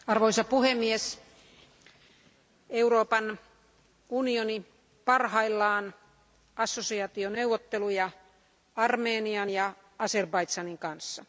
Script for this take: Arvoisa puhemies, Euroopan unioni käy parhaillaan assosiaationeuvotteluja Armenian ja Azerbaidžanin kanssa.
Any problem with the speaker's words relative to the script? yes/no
yes